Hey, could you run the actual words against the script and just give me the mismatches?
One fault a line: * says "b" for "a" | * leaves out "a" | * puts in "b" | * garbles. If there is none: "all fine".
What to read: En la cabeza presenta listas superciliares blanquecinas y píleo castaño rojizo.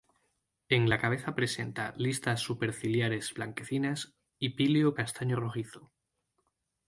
all fine